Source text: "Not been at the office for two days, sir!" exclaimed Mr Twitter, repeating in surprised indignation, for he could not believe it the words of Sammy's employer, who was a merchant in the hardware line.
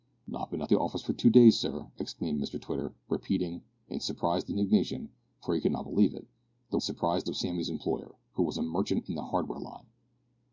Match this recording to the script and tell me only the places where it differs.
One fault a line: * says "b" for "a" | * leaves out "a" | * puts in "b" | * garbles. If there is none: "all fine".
* says "surprised" for "words"